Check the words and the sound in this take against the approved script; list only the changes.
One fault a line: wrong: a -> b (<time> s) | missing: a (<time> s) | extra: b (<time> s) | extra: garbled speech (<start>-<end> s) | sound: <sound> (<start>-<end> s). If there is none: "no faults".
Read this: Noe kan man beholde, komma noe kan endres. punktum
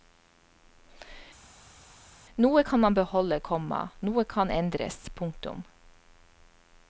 no faults